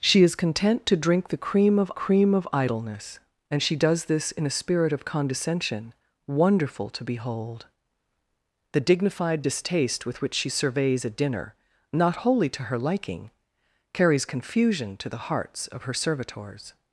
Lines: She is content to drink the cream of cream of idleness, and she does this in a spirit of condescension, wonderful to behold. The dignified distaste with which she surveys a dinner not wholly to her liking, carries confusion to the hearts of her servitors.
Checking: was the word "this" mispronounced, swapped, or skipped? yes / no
no